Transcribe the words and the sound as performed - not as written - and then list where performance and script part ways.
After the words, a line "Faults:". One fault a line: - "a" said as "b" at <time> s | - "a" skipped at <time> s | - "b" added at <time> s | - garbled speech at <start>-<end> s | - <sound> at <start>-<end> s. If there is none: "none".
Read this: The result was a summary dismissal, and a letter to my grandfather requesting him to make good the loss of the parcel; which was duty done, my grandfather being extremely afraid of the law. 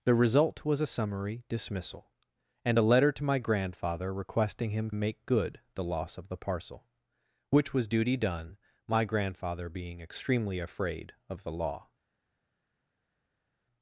The result was a summary dismissal, and a letter to my grandfather requesting him make good the loss of the parcel; which was duty done, my grandfather being extremely afraid of the law.
Faults:
- "to" skipped at 4.9 s